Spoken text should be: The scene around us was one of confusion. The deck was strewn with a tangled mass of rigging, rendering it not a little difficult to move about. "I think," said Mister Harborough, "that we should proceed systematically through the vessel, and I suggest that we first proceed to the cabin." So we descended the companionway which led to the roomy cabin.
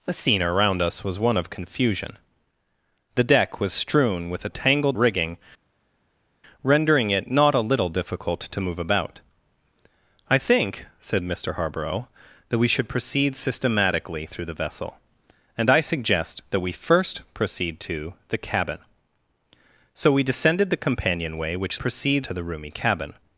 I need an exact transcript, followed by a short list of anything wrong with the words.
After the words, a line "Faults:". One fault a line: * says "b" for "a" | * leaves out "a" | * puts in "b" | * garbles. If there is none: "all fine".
The scene around us was one of confusion. The deck was strewn with a tangled rigging, rendering it not a little difficult to move about. "I think," said Mister Harborough, "that we should proceed systematically through the vessel, and I suggest that we first proceed to the cabin." So we descended the companionway which proceed to the roomy cabin.
Faults:
* leaves out "mass of"
* says "proceed" for "led"